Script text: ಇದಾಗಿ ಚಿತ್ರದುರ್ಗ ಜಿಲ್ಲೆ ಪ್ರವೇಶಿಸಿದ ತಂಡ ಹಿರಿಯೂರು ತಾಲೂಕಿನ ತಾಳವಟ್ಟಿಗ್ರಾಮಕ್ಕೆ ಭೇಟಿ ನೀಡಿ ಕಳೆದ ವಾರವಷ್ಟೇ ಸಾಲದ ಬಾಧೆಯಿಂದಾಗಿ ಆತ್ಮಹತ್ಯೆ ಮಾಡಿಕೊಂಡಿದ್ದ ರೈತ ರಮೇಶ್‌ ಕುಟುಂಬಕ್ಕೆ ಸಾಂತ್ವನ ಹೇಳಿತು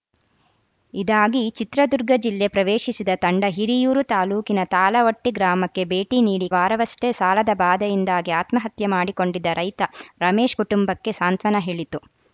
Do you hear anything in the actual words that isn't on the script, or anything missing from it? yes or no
yes